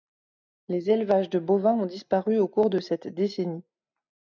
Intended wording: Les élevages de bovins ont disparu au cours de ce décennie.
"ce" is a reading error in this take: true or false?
true